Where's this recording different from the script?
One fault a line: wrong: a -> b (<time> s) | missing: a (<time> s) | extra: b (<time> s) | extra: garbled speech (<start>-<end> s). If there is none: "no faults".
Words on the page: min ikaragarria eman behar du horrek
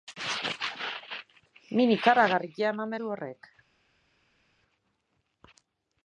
missing: behar (3.0 s)